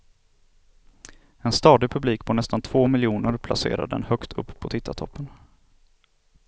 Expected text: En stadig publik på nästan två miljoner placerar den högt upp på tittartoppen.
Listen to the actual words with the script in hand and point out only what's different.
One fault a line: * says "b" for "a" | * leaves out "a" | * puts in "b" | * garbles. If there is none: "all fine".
all fine